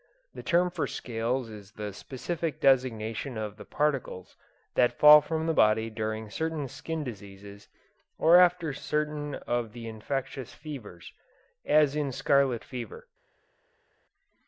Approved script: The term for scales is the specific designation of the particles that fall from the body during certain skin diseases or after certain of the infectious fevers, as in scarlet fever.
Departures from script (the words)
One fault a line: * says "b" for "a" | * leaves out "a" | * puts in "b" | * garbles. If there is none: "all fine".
all fine